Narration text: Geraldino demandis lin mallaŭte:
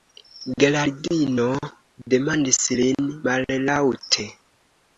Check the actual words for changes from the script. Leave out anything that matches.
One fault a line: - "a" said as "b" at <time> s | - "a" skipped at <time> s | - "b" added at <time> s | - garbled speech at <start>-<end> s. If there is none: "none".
none